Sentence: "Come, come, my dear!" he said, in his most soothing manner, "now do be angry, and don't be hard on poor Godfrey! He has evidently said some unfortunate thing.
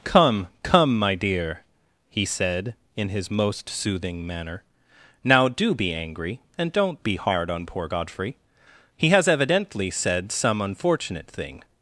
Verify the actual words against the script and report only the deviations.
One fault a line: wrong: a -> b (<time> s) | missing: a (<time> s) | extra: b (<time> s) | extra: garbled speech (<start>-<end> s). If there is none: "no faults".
no faults